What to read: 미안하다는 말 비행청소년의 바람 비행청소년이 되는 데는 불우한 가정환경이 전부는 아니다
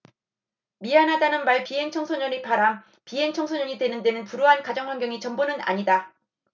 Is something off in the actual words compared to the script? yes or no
no